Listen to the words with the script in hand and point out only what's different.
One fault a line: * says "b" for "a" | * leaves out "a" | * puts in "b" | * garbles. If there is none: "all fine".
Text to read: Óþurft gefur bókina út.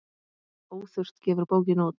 all fine